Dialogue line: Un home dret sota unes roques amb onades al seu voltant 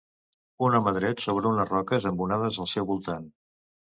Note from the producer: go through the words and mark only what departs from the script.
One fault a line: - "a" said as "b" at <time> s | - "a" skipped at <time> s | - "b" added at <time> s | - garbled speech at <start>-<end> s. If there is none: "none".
- "sota" said as "sobre" at 1.2 s